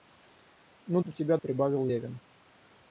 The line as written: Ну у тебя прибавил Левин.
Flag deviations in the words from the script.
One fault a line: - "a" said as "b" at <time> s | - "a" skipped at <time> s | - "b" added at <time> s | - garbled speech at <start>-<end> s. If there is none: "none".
none